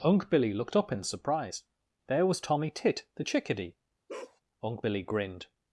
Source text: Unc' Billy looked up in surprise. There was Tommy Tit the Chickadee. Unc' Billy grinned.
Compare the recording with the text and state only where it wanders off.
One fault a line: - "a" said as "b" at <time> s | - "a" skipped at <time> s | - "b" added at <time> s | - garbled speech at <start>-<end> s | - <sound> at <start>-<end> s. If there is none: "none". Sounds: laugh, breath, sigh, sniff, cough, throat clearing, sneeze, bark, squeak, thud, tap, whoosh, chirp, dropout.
- bark at 4.1-4.4 s